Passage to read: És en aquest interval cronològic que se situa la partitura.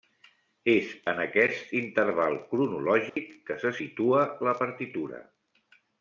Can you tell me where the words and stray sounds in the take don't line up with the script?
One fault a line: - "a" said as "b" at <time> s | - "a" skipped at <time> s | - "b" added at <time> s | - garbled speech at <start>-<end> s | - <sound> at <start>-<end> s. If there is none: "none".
- dropout at 3.1-3.2 s